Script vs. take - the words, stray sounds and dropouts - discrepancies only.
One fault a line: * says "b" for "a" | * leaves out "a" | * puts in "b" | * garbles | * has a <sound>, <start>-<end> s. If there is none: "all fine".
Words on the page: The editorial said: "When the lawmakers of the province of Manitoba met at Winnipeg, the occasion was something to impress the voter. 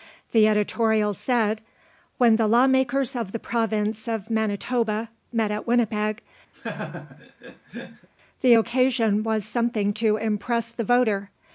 * has a laugh, 6.5-8.1 s